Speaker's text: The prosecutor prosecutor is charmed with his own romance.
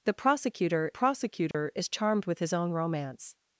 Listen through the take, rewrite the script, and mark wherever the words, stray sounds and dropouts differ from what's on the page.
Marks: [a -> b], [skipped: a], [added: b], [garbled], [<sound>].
The prosecutor prosecutor [dropout] is charmed with his own romance.